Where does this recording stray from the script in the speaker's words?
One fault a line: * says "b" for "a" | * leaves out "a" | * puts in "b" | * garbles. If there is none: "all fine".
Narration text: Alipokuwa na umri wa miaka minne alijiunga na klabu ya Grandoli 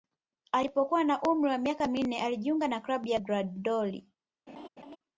all fine